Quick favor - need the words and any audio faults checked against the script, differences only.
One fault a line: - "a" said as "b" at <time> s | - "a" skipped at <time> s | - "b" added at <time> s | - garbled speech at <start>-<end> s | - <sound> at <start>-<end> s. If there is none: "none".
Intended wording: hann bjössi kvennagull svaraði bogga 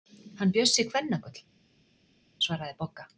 none